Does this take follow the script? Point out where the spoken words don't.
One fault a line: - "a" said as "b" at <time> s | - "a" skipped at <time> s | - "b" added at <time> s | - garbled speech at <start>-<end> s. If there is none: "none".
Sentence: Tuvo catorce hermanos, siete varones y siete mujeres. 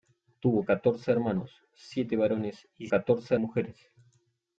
- "siete" said as "catorce" at 2.9 s